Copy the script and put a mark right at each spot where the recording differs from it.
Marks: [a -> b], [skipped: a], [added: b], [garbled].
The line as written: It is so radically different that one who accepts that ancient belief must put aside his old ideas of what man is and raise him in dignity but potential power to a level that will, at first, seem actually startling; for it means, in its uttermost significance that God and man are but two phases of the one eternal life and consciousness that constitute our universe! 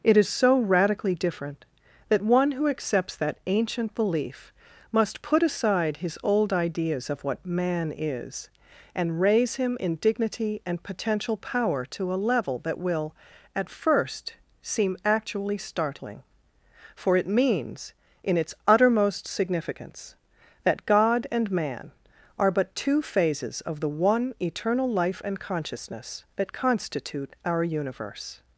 It is so radically different that one who accepts that ancient belief must put aside his old ideas of what man is and raise him in dignity [but -> and] potential power to a level that will, at first, seem actually startling; for it means, in its uttermost significance that God and man are but two phases of the one eternal life and consciousness that constitute our universe!